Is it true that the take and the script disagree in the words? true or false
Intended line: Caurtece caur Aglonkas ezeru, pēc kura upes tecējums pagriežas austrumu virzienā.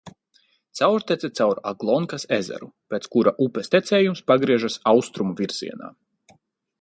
false